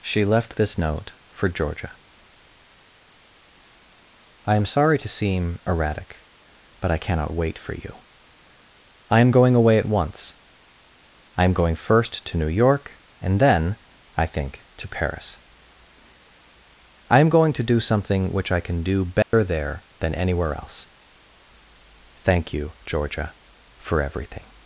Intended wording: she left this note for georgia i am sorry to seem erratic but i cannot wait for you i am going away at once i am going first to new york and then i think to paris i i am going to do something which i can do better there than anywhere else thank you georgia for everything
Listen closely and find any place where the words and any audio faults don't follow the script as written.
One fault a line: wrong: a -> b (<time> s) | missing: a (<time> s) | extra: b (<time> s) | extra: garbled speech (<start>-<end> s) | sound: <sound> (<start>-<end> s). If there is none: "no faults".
missing: i (17.2 s)
sound: dropout (19.2-19.3 s)